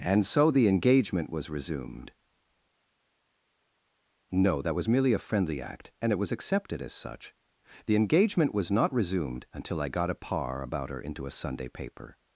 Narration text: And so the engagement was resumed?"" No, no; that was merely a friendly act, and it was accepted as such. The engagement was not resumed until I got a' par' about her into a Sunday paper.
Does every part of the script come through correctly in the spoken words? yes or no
no